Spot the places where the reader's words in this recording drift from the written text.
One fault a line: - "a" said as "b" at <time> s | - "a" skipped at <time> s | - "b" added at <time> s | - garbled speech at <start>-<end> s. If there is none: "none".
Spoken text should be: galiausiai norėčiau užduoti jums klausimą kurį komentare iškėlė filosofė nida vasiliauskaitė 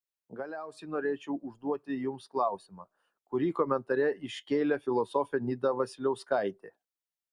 none